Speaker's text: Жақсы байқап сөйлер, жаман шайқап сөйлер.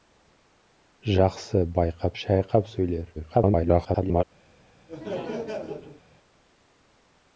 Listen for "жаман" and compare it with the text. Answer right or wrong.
wrong